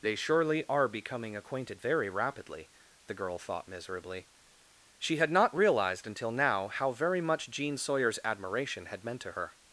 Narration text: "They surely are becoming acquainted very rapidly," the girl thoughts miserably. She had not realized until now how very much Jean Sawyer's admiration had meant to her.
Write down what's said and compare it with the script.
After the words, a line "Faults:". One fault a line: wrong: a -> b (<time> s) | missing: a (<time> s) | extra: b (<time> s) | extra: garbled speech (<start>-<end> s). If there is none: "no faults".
"They surely are becoming acquainted very rapidly," the girl thought miserably. She had not realized until now how very much Jean Sawyer's admiration had meant to her.
Faults:
wrong: thoughts -> thought (3.4 s)